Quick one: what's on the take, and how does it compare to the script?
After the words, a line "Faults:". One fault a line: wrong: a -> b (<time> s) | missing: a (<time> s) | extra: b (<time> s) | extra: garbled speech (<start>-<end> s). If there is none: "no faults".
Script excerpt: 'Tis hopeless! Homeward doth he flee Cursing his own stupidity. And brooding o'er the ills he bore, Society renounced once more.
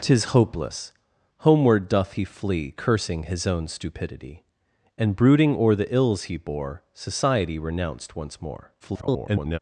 'Tis hopeless! Homeward doth he flee Cursing his own stupidity. And brooding o'er the ills he bore, Society renounced once more. [garbled]
Faults:
extra: garbled speech (8.8-9.6 s)